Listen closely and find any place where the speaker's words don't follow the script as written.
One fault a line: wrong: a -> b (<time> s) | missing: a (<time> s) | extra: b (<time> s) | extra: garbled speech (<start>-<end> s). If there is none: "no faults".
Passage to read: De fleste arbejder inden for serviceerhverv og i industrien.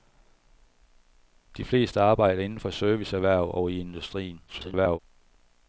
extra: garbled speech (4.5-5.0 s)